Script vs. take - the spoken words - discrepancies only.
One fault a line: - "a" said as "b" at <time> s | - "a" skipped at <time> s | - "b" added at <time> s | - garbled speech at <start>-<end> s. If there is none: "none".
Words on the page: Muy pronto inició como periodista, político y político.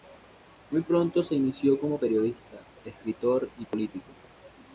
- "se" added at 1.2 s
- "político" said as "escritor" at 2.8 s